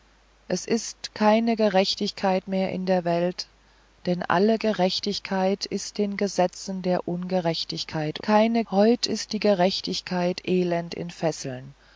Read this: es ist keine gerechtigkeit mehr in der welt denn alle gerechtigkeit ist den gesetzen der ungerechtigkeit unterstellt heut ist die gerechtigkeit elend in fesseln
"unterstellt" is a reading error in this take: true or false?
true